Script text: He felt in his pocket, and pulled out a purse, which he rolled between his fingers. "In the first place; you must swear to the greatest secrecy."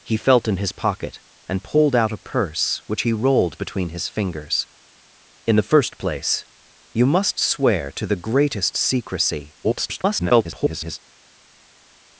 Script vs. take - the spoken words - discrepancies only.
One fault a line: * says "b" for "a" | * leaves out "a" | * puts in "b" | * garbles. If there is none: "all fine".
* garbles